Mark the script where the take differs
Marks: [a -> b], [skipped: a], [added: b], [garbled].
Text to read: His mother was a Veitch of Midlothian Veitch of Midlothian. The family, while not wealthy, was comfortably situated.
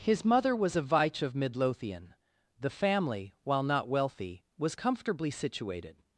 His mother was a Veitch of Midlothian [skipped: Veitch of Midlothian.] The family, while not wealthy, was comfortably situated.